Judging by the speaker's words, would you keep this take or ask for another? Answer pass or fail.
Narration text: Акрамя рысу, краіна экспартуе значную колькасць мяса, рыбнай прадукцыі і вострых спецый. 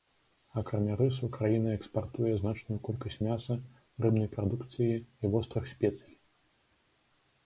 pass